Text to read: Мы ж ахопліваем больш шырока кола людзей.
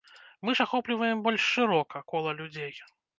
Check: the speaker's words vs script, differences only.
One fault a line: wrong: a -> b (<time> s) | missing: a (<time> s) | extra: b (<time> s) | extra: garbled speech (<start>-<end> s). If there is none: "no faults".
no faults